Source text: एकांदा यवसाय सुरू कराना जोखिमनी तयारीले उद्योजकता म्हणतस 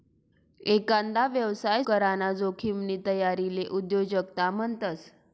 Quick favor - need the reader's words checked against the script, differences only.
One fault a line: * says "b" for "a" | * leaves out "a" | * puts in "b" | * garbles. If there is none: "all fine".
* leaves out "सुरू"